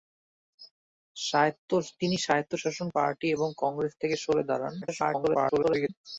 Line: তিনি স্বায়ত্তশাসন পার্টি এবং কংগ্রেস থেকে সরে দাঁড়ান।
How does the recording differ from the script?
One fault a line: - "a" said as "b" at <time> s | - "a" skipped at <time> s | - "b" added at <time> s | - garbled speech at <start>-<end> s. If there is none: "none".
- garbled speech at 4.8-5.9 s